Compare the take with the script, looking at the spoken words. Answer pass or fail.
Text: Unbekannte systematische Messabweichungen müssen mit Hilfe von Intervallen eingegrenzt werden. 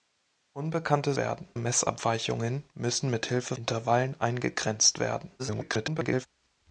fail